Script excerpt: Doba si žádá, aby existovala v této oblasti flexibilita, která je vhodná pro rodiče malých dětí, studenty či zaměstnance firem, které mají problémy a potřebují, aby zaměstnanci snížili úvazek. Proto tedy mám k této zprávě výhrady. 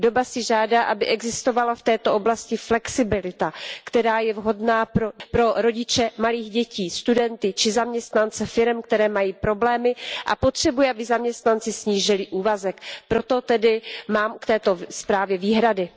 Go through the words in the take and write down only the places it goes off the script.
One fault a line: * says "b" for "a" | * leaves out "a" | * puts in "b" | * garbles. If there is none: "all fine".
all fine